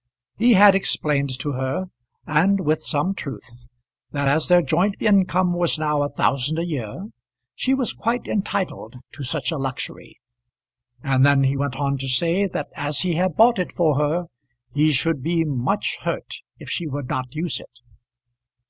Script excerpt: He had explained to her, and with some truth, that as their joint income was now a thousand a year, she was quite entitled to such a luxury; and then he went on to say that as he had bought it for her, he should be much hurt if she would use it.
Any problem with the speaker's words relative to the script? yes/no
yes